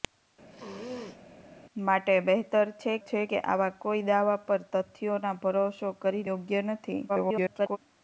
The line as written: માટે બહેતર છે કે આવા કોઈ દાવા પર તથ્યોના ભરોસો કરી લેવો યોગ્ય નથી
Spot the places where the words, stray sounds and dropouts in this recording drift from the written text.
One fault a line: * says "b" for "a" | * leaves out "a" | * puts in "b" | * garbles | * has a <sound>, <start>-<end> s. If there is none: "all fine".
* has a sneeze, 0.5-1.3 s
* puts in "છે"
* leaves out "લેવો"
* garbles